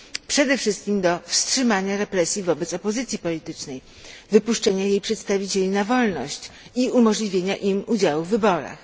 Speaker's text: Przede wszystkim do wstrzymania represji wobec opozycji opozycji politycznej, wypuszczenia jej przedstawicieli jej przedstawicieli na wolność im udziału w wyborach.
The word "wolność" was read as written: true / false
false